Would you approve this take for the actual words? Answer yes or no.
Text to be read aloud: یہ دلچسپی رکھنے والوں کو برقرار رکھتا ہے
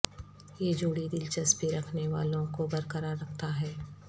no